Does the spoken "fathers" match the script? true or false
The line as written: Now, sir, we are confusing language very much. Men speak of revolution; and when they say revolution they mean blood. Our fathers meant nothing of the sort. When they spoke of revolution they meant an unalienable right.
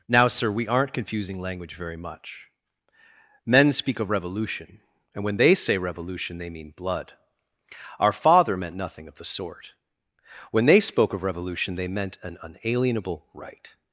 false